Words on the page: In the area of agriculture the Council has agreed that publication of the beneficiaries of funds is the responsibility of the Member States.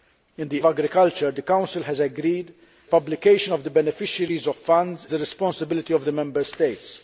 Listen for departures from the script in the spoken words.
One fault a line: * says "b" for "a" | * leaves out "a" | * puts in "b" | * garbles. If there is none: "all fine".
* leaves out "area"
* leaves out "that"
* leaves out "is"